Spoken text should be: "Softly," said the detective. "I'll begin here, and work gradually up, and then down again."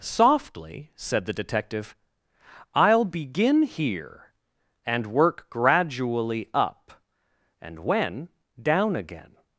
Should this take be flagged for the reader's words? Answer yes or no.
yes